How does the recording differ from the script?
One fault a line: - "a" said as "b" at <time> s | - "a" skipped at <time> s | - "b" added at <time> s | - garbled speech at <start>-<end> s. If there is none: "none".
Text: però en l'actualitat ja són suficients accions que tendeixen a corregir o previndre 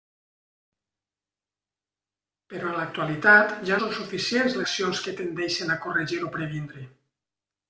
none